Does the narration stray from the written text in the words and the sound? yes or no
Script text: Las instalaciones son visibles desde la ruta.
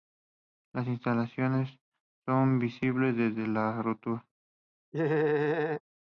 yes